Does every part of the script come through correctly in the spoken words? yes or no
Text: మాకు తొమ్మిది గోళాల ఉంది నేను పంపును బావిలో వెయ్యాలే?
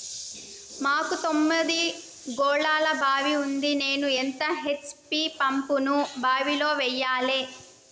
no